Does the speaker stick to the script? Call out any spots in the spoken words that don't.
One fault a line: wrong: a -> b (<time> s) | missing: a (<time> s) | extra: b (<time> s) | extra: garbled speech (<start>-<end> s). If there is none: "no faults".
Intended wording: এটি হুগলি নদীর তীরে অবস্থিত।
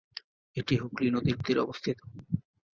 no faults